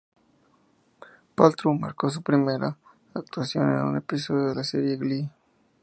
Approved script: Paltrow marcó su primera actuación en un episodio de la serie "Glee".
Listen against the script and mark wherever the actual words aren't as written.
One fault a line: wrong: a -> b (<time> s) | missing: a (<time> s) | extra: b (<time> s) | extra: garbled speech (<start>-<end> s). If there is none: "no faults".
no faults